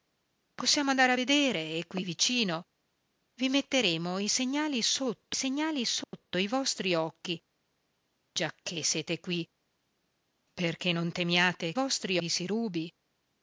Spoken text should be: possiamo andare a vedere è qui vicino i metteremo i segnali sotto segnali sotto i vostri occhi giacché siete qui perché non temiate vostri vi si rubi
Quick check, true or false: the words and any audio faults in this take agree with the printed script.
false